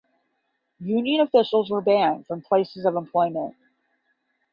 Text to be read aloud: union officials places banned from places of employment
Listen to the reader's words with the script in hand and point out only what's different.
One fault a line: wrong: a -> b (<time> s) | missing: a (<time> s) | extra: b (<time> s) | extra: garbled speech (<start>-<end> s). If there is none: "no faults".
wrong: places -> were (1.7 s)